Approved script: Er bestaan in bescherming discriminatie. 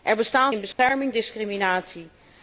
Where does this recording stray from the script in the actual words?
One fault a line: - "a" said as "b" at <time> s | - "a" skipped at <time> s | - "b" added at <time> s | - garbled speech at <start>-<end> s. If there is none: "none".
none